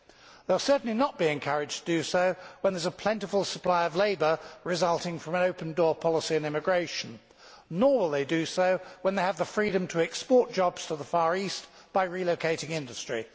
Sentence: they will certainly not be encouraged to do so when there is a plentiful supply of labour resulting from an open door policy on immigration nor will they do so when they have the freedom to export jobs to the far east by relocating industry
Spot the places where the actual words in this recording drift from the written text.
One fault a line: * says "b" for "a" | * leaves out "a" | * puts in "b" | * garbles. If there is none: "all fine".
all fine